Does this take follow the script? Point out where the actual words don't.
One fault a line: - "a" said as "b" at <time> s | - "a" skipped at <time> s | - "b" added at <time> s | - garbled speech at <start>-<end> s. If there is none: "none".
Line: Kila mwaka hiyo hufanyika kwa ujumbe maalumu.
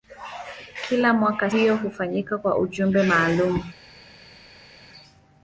none